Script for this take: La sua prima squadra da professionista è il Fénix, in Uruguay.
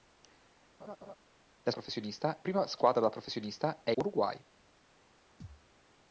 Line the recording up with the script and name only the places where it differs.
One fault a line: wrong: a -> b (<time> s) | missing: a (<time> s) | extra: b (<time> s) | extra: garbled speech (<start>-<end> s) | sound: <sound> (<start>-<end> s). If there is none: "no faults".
sound: laugh (0.8-1.2 s)
wrong: sua -> professionista (1.7 s)
missing: il Fénix in (3.9 s)
sound: thud (5.4-5.7 s)